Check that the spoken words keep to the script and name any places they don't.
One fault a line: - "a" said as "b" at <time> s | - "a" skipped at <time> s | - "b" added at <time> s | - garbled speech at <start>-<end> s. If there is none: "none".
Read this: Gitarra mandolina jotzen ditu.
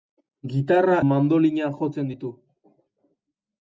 none